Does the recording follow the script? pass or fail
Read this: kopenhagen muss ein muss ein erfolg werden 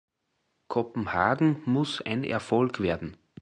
fail